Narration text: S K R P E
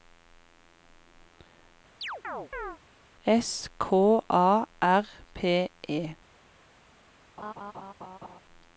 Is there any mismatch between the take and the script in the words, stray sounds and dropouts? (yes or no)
yes